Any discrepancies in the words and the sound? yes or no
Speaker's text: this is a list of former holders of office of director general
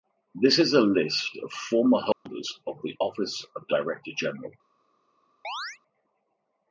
yes